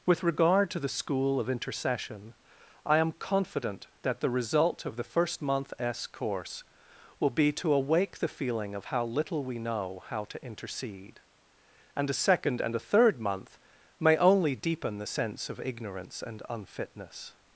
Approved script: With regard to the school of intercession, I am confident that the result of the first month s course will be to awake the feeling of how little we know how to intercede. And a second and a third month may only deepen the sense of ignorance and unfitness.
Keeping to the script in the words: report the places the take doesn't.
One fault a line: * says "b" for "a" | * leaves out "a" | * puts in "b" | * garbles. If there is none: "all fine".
all fine